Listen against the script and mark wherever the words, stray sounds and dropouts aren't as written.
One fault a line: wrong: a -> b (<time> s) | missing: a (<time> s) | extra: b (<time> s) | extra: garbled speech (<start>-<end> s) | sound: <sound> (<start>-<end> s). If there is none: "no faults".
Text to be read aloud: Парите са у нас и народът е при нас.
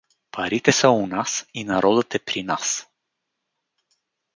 no faults